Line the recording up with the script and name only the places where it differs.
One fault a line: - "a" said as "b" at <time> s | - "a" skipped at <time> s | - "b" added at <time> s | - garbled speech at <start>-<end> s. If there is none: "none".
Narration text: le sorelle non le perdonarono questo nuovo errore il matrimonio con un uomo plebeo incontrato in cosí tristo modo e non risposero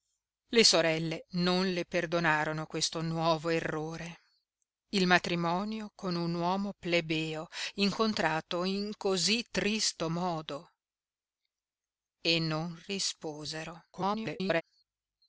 - garbled speech at 13.9-14.6 s